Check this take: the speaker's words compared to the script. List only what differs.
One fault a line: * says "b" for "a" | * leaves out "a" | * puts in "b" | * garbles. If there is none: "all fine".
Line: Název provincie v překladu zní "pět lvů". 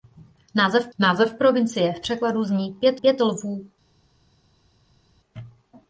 * puts in "název"
* puts in "pět"